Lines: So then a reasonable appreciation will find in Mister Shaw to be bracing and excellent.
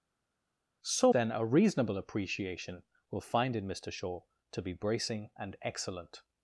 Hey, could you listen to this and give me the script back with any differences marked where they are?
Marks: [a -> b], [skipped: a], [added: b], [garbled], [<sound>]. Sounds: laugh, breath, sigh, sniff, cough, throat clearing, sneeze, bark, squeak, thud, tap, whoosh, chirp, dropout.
So then a reasonable appreciation will find in Mister Shaw to be bracing and excellent.